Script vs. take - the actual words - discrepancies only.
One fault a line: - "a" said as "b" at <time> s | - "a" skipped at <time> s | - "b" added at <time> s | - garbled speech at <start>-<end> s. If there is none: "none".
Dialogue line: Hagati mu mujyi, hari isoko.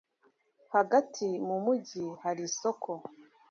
none